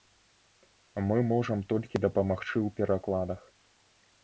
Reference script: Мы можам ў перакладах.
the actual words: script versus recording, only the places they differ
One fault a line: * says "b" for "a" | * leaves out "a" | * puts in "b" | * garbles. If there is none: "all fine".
* puts in "толькі дапамагчы"